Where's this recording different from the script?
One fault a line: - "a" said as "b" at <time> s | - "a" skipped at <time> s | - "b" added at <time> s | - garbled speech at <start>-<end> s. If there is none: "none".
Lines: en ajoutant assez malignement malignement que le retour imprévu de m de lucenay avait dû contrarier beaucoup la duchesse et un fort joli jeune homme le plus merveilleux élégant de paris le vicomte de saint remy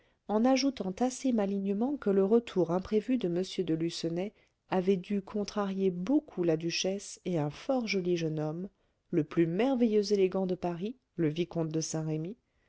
- "malignement" skipped at 1.9 s